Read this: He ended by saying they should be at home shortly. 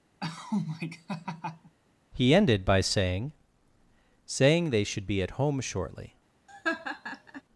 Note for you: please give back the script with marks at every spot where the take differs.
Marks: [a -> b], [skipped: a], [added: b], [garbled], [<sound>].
[laugh] He ended by saying [added: saying] they should be at home shortly. [laugh]